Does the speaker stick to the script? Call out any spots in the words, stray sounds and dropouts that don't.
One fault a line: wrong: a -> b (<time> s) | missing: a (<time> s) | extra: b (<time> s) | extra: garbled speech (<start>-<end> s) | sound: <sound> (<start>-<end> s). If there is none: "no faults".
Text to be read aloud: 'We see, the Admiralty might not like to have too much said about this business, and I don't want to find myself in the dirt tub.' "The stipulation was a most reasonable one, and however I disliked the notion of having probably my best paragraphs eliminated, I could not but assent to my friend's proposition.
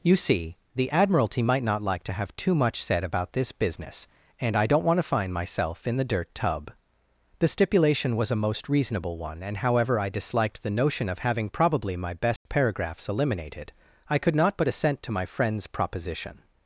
wrong: We -> You (0.0 s)
sound: dropout (12.4-12.5 s)